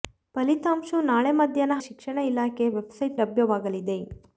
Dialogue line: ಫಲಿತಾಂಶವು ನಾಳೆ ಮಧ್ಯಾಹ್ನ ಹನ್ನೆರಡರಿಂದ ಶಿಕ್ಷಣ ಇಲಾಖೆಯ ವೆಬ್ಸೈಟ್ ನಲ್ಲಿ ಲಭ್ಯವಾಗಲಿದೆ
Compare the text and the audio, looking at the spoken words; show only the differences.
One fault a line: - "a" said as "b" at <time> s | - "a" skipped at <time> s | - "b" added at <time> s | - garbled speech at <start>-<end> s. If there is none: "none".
- "ಹನ್ನೆರಡರಿಂದ" skipped at 1.8 s
- "ನಲ್ಲಿ" skipped at 3.2 s